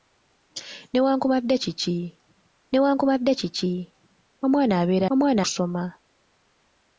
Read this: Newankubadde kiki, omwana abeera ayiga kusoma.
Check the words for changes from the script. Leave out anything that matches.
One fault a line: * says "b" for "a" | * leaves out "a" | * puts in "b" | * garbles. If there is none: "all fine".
* puts in "newankubadde kiki"
* says "omwana" for "ayiga"